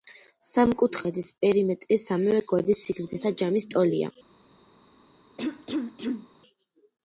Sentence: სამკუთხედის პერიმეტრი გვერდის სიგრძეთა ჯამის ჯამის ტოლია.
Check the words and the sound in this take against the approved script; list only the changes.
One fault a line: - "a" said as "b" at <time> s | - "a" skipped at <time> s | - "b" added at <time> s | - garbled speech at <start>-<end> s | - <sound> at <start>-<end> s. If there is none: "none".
- "სამივე" added at 2.0 s
- "ჯამის" skipped at 3.7 s
- cough at 5.4-6.3 s